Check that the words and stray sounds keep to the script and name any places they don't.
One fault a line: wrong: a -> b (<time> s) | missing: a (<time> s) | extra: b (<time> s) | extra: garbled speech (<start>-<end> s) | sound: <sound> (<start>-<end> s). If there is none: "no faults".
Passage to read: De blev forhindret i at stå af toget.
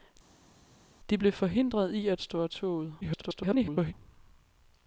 extra: garbled speech (3.0-3.9 s)